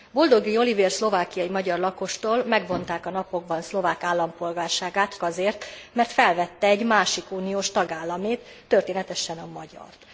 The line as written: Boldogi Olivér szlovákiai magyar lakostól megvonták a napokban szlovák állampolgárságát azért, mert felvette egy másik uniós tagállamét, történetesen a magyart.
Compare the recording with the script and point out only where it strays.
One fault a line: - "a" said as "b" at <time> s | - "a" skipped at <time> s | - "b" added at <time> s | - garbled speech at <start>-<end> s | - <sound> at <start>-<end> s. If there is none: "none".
none